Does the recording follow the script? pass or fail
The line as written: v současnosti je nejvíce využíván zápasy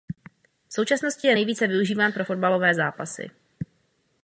fail